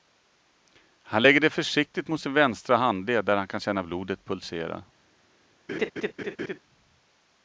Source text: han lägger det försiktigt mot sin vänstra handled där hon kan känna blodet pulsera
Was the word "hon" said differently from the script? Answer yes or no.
yes